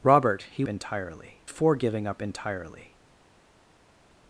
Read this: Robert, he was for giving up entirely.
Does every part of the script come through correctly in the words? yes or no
no